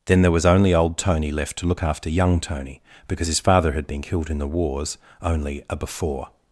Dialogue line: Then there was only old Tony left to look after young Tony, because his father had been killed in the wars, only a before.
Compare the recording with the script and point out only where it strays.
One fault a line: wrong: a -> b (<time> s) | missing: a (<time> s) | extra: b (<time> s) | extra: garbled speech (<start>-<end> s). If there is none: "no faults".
no faults